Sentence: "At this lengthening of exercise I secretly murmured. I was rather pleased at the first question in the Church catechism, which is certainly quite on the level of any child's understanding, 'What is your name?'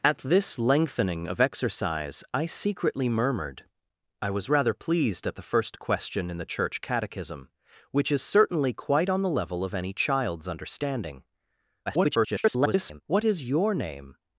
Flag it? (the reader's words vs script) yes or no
yes